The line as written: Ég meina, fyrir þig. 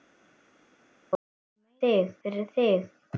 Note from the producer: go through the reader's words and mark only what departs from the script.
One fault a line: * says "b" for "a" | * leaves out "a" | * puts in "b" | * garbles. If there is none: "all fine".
* says "þig" for "meina"